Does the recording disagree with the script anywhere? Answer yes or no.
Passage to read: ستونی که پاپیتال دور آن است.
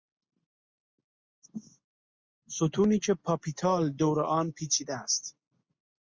yes